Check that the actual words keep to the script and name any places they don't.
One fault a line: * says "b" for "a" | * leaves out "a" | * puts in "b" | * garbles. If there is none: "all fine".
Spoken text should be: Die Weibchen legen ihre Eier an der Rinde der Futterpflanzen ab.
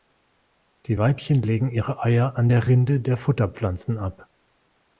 all fine